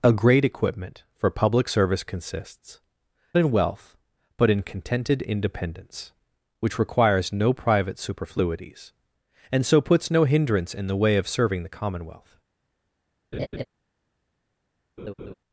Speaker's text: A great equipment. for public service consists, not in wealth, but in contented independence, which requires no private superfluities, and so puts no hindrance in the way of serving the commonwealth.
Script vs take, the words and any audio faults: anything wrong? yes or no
yes